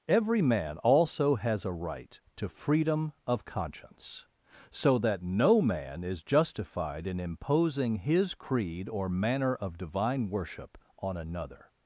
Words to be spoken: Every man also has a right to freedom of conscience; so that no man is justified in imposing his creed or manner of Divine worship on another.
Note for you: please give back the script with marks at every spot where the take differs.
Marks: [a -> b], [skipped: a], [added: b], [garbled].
Every man also has a right to freedom of conscience; so that no man is justified in imposing his creed or manner of Divine worship on another.